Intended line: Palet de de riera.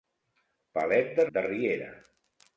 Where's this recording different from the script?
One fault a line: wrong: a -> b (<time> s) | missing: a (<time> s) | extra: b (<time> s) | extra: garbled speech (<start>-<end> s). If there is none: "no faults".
no faults